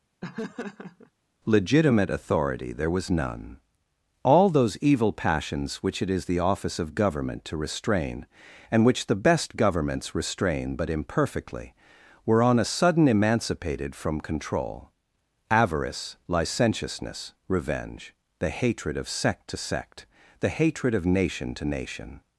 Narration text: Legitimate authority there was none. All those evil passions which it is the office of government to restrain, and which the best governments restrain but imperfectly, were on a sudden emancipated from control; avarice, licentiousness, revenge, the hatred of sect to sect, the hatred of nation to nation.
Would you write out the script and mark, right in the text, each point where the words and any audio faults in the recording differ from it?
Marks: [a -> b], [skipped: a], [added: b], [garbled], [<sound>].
[laugh] Legitimate authority there was none. All those evil passions which it is the office of government to restrain, and which the best governments restrain but imperfectly, were on a sudden emancipated from control; avarice, licentiousness, revenge, the hatred of sect to sect, the hatred of nation to nation.